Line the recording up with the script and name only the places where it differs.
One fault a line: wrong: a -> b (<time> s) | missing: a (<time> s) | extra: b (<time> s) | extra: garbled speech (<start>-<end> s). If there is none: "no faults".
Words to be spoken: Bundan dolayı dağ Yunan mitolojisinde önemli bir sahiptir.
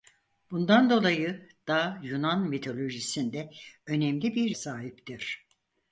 no faults